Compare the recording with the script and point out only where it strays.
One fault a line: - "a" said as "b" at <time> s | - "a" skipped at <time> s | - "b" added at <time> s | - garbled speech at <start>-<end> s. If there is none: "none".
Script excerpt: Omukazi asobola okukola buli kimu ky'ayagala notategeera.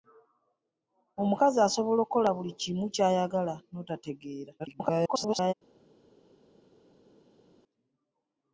- garbled speech at 4.6-5.5 s